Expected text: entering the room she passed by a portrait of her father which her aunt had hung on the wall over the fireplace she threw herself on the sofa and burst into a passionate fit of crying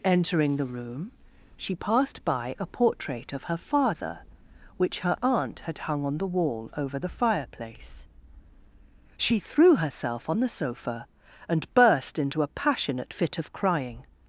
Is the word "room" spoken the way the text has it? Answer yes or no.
yes